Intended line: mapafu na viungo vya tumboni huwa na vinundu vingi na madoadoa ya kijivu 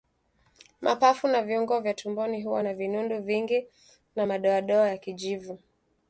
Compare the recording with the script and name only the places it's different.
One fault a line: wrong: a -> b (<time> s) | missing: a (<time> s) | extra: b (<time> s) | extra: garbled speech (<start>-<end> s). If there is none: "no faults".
no faults